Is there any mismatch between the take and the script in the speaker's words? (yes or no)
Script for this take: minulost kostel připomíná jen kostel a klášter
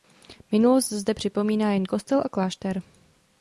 yes